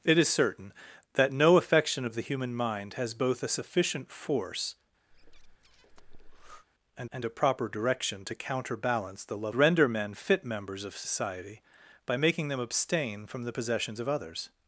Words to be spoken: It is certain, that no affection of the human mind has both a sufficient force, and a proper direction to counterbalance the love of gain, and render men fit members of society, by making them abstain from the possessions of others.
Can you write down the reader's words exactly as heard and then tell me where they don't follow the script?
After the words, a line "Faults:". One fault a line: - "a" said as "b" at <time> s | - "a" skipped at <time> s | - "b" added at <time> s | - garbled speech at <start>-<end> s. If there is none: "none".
It is certain, that no affection of the human mind has both a sufficient force, and and a proper direction to counterbalance the love render men fit members of society, by making them abstain from the possessions of others.
Faults:
- "and" added at 7.1 s
- "of gain and" skipped at 9.6 s